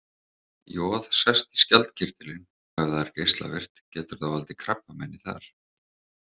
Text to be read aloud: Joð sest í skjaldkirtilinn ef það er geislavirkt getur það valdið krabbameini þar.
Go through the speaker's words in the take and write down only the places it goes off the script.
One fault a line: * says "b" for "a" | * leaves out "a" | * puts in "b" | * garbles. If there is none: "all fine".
all fine